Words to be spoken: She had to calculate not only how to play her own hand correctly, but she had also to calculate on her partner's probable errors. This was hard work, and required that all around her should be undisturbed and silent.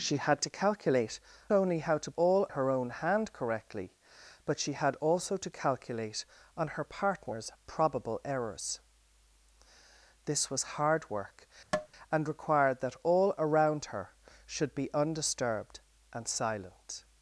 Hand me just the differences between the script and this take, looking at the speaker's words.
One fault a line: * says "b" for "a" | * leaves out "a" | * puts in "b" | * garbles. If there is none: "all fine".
* leaves out "not"
* says "all" for "play"